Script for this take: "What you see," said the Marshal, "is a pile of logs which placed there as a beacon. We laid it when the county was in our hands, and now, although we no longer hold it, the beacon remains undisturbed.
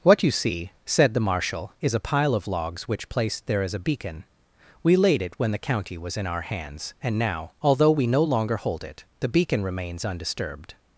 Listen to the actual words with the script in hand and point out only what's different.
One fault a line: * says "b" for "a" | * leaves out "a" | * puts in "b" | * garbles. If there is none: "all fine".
all fine